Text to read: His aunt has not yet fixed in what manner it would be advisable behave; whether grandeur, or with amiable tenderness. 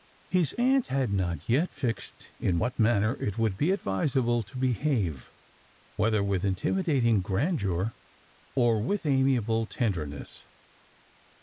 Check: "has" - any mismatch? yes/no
yes